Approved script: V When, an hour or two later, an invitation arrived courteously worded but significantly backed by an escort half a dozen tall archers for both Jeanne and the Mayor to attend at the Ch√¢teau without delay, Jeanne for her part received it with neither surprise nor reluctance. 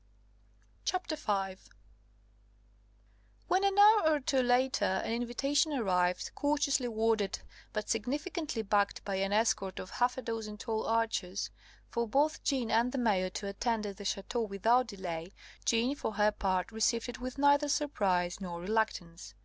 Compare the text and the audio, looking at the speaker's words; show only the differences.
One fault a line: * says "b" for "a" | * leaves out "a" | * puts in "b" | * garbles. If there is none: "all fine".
* puts in "of"